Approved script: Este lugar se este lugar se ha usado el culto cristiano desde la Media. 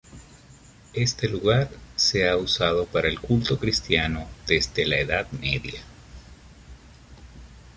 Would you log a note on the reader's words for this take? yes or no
yes